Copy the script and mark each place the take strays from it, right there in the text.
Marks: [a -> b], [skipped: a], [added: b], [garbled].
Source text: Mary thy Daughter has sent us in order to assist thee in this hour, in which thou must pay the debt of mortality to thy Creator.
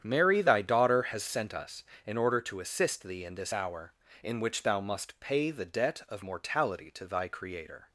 Mary thy Daughter has sent us in order to assist thee in this hour, in which thou must pay the debt of mortality to thy Creator.